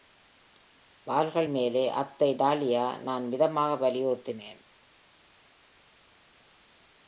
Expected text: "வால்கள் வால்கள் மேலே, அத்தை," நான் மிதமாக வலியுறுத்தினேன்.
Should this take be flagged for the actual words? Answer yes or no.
yes